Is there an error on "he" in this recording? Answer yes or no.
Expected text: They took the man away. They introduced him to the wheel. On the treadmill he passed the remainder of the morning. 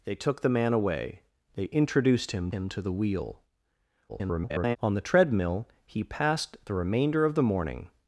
no